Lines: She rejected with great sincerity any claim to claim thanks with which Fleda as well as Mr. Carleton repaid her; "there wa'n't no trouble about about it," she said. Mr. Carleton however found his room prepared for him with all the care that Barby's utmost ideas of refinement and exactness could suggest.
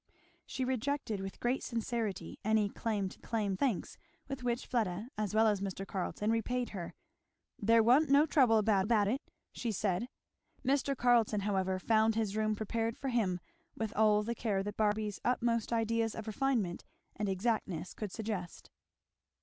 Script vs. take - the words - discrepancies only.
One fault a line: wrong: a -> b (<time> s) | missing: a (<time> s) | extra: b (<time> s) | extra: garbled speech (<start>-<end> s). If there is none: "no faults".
no faults